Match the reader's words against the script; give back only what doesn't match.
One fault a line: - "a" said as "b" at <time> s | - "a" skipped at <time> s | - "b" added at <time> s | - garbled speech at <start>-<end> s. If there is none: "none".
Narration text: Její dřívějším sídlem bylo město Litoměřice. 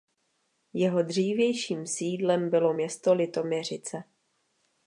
- "Její" said as "Jeho" at 0.7 s